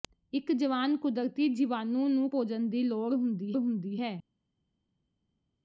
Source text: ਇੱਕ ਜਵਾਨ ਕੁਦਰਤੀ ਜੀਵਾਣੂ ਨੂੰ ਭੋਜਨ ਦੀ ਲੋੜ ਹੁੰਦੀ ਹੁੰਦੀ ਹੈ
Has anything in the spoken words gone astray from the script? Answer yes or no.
no